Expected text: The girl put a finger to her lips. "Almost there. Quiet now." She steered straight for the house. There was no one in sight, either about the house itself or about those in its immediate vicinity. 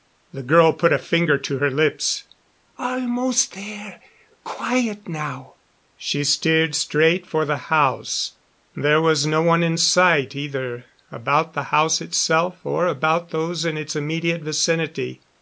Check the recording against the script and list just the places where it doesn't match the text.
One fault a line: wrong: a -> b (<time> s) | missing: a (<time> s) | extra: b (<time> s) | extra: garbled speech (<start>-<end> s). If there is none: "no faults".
no faults